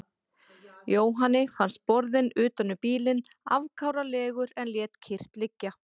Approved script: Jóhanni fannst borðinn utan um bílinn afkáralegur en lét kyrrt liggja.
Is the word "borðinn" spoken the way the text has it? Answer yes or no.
yes